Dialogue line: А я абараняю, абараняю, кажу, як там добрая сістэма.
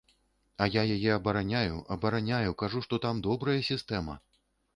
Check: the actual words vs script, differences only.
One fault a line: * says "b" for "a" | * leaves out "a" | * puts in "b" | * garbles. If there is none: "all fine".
* puts in "яе"
* says "што" for "як"